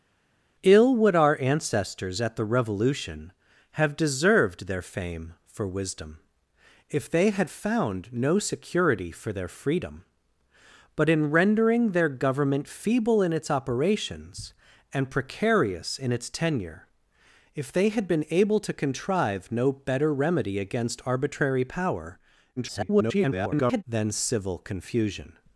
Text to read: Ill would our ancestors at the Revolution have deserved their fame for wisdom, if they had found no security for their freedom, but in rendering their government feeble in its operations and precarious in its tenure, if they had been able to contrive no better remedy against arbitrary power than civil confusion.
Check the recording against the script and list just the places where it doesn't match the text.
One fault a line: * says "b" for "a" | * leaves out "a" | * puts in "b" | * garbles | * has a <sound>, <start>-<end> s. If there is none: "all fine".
* garbles